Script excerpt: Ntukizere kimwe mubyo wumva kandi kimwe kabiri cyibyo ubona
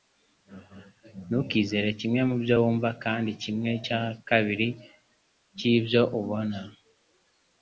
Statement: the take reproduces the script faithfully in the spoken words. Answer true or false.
false